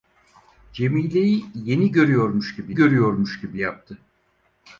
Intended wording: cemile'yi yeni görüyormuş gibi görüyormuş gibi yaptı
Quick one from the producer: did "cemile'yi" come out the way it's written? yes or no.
yes